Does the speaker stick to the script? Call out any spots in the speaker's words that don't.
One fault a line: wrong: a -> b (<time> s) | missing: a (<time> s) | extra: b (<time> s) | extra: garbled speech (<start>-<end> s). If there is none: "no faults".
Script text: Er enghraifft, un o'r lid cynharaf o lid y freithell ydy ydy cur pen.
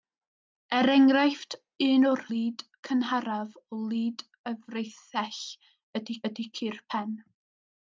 no faults